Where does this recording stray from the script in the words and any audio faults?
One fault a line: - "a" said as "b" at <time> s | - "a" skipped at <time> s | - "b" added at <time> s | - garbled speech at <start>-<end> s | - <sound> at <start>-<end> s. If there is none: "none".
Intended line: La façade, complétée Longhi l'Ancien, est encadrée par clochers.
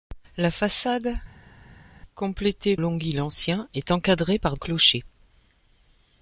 none